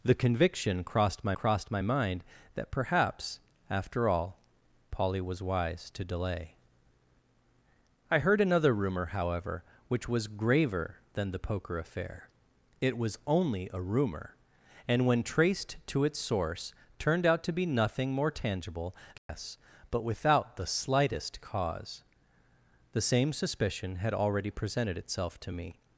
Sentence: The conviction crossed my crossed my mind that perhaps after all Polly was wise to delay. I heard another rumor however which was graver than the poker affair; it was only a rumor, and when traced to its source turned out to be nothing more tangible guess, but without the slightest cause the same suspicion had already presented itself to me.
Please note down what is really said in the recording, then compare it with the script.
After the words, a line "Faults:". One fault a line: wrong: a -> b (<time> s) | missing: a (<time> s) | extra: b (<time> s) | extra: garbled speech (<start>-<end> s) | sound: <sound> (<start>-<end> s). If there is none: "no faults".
The conviction crossed my crossed my mind that perhaps after all Polly was wise to delay. I heard another rumor however which was graver than the poker affair; it was only a rumor, and when traced to its source turned out to be nothing more tangible guess, but without the slightest cause the same suspicion had already presented itself to me.
Faults:
sound: dropout (19.2-19.3 s)